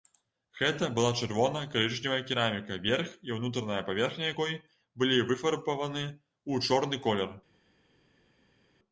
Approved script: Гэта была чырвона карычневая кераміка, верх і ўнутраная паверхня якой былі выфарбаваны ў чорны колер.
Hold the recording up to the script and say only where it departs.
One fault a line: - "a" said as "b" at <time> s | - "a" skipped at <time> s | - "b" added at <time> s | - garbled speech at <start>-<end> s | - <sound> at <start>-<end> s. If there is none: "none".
none